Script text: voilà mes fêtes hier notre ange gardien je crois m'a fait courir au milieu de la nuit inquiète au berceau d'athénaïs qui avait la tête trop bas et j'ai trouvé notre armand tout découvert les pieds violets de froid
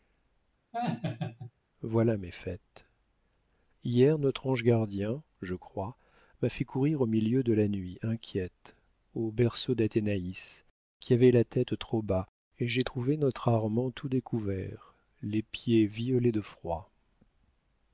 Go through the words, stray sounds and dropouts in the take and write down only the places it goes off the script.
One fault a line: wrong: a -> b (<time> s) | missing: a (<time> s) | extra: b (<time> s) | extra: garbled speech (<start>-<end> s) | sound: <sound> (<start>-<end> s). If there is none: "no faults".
sound: laugh (0.7-1.5 s)